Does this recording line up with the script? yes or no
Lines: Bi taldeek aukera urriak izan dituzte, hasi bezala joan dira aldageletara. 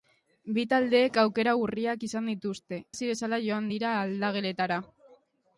yes